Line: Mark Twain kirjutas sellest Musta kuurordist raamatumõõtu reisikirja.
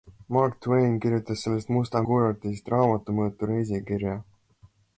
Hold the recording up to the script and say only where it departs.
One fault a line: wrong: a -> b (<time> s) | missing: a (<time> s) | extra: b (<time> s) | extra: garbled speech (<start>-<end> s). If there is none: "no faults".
no faults